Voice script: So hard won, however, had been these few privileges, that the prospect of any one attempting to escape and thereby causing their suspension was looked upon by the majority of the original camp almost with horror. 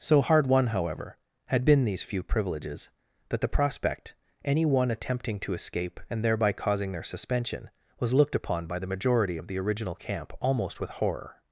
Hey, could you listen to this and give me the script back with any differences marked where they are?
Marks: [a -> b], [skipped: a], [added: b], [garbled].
So hard won, however, had been these few privileges, that the prospect [skipped: of] any one attempting to escape and thereby causing their suspension was looked upon by the majority of the original camp almost with horror.